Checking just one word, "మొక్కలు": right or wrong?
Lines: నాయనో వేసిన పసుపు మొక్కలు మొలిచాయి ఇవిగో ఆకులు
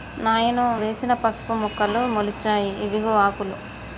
right